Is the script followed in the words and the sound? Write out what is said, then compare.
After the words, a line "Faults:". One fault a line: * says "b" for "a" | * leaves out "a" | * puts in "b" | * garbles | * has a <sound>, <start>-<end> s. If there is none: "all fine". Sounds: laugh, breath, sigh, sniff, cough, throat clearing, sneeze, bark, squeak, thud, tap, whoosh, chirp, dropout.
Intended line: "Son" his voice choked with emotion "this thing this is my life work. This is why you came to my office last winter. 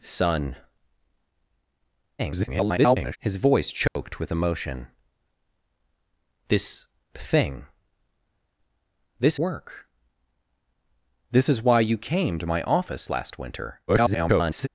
"Son" [garbled] his voice choked with emotion "this thing this work. This is why you came to my office last winter. [garbled]
Faults:
* garbles
* has a dropout, 3.9-4.0 s
* leaves out "is my life"
* garbles